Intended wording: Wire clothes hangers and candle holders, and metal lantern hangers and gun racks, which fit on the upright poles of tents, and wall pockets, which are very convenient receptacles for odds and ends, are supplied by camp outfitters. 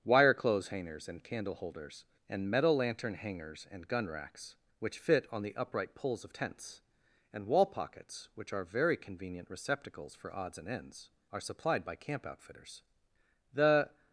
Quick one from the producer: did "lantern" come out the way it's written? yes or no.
yes